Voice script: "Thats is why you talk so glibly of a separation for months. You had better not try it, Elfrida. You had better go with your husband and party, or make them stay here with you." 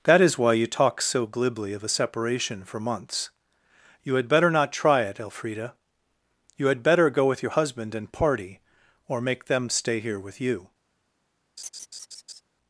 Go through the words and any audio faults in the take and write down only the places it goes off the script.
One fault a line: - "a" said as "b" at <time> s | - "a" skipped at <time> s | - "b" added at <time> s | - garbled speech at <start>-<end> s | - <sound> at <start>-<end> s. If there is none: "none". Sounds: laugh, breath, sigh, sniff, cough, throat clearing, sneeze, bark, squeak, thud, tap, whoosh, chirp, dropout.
- "Thats" said as "That" at 0.0 s
- laugh at 11.6-12.4 s